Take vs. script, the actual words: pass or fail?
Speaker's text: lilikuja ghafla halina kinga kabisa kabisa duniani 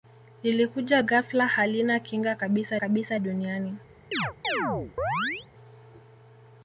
pass